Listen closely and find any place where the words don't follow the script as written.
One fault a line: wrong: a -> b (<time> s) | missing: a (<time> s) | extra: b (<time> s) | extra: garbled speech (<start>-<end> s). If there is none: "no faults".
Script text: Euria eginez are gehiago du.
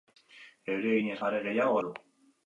no faults